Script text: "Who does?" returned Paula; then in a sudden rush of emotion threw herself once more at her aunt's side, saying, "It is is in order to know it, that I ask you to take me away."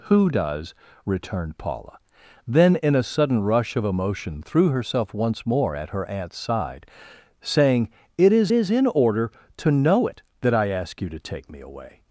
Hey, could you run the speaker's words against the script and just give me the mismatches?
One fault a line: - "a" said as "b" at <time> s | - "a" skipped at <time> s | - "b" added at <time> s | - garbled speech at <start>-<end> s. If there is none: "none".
none